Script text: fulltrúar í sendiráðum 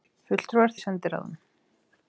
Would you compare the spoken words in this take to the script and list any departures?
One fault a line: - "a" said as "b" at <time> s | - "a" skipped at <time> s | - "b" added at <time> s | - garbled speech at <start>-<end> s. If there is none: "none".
none